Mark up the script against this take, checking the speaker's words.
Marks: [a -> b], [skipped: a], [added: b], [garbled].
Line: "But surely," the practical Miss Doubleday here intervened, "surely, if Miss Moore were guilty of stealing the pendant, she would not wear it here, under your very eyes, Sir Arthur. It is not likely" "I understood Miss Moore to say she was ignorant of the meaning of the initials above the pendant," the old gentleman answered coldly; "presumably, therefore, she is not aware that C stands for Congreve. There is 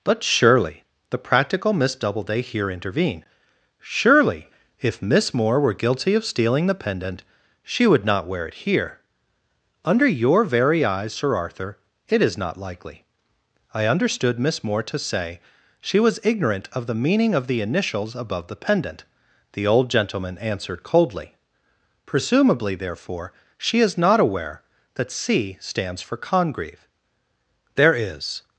"But surely," the practical Miss Doubleday here intervened, "surely, if Miss Moore were guilty of stealing the pendant, she would not wear it here, under your very eyes, Sir Arthur. It is not likely" "I understood Miss Moore to say she was ignorant of the meaning of the initials above the pendant," the old gentleman answered coldly; "presumably, therefore, she is not aware that C stands for Congreve. There is